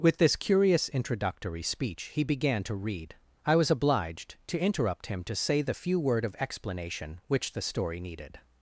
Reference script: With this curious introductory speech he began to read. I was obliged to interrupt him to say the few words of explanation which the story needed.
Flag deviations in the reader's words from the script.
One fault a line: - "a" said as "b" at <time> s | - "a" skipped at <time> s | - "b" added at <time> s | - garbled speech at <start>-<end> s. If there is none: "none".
- "words" said as "word" at 6.0 s